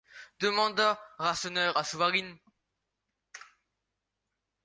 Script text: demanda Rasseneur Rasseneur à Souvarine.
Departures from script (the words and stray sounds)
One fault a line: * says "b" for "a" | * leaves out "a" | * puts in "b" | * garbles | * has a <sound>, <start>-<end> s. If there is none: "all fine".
* leaves out "Rasseneur"